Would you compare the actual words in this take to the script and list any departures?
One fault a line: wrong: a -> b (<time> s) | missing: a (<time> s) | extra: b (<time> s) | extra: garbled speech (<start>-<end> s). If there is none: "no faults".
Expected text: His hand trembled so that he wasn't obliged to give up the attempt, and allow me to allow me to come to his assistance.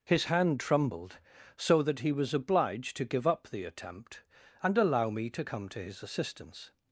wrong: wasn't -> was (2.1 s)
missing: allow me to (5.4 s)